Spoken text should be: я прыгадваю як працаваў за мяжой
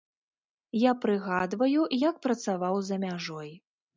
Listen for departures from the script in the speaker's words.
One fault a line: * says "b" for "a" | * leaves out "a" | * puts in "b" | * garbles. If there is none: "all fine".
all fine